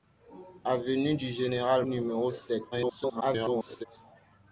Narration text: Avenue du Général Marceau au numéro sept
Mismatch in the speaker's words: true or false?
true